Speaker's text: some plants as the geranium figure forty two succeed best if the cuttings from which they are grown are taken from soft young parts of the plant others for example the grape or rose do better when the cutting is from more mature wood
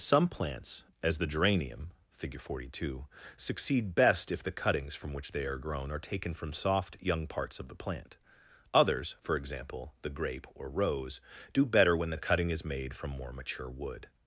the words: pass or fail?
fail